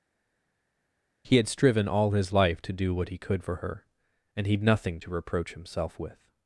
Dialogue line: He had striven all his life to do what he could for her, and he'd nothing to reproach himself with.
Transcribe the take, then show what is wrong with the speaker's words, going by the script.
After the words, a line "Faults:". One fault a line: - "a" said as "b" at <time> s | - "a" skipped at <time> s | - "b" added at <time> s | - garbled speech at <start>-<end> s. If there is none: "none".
He had striven all his life to do what he could for her, and he'd nothing to reproach himself with.
Faults:
none